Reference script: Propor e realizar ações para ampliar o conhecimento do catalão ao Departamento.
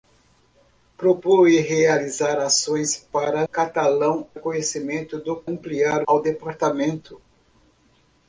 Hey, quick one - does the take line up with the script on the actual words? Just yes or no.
no